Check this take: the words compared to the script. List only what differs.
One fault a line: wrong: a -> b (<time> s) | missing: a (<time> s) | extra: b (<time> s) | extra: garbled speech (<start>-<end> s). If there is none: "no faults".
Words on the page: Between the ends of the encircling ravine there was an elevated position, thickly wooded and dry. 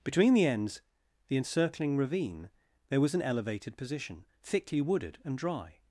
missing: of (0.8 s)